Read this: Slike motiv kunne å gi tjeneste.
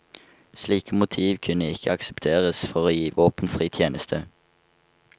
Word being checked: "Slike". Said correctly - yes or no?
yes